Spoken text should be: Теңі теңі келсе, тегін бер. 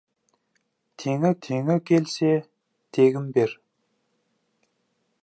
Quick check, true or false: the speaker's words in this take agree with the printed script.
true